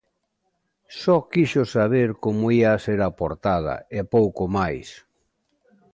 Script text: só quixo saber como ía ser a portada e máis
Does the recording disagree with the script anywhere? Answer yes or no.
yes